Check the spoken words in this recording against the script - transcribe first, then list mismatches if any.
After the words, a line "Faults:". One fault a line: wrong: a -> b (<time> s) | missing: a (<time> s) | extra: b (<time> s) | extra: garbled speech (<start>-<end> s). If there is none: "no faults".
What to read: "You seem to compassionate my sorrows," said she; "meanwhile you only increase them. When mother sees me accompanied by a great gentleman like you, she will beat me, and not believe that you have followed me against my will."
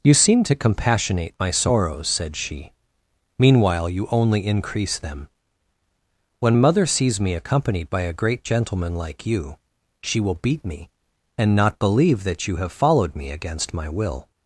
"You seem to compassionate my sorrows," said she; "meanwhile you only increase them. When mother sees me accompanied by a great gentleman like you, she will beat me, and not believe that you have followed me against my will."
Faults:
no faults